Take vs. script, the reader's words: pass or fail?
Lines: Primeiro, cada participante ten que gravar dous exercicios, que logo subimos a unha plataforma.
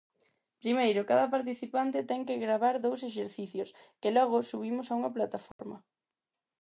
pass